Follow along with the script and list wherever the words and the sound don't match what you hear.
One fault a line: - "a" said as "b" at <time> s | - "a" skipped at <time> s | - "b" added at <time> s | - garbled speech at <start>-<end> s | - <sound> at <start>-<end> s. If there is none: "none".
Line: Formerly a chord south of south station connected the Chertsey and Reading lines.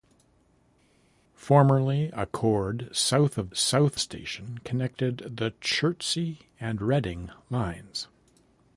none